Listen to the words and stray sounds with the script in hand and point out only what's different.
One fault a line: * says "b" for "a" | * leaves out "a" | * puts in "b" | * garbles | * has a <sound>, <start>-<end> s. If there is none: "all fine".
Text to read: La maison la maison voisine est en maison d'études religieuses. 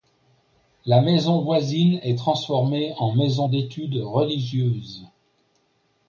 * leaves out "la maison"
* puts in "transformée"